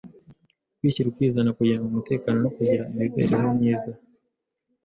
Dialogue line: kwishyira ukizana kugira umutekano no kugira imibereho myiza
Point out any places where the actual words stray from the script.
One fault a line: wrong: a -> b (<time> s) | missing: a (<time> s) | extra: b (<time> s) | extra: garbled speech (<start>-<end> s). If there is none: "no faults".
no faults